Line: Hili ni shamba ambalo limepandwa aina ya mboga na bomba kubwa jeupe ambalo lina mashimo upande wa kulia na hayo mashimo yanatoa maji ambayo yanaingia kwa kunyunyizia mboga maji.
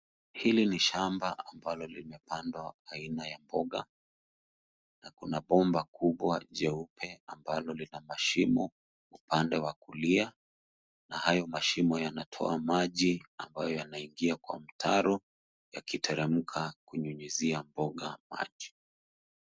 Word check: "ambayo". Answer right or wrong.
right